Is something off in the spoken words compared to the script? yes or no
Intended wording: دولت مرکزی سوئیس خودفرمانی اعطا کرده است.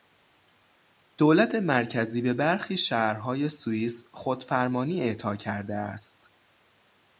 yes